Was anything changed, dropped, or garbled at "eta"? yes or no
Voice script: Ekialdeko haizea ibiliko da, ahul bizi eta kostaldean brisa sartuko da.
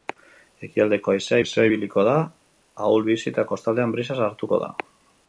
no